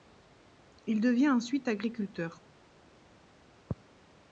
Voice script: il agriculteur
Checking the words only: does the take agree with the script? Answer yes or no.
no